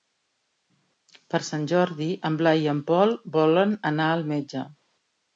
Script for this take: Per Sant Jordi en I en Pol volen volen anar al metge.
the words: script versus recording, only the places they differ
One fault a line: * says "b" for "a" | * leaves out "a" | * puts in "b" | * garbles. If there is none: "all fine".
* puts in "Blai"
* leaves out "volen"